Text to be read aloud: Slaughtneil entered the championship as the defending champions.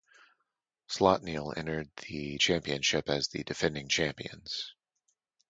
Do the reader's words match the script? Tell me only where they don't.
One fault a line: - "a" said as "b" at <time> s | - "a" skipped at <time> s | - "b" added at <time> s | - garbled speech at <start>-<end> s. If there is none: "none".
none